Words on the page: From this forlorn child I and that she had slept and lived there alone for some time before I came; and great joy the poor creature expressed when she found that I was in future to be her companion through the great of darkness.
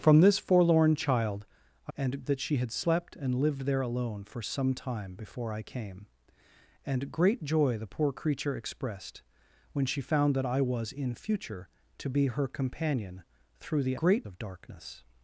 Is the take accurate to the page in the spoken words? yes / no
yes